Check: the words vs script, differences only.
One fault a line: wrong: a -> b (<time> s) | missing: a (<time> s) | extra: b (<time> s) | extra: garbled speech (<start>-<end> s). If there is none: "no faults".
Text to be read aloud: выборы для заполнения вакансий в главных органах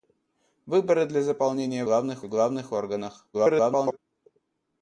wrong: вакансий -> главных (1.8 s)
extra: garbled speech (3.3-4.0 s)